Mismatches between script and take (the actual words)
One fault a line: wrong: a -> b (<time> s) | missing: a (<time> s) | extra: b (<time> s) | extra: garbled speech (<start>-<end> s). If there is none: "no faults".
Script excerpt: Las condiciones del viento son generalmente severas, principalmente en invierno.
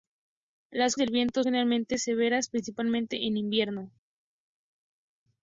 missing: condiciones (1.0 s)
missing: son (1.4 s)